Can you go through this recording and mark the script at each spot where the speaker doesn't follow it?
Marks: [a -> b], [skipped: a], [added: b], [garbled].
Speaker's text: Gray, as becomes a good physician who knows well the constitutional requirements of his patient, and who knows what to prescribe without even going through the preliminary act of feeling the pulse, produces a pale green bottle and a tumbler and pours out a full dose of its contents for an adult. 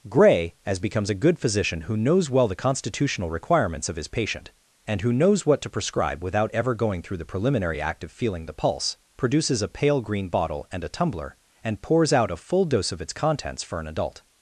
Gray, as becomes a good physician who knows well the constitutional requirements of his patient, and who knows what to prescribe without [even -> ever] going through the preliminary act of feeling the pulse, produces a pale green bottle and a tumbler and pours out a full dose of its contents for an adult.